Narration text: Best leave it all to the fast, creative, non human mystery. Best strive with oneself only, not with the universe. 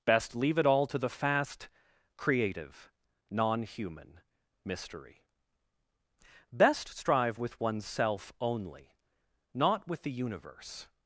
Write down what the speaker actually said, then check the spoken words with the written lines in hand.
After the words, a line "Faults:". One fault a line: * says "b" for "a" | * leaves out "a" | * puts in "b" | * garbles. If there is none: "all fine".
Best leave it all to the fast, creative, non human mystery. Best strive with oneself only, not with the universe.
Faults:
all fine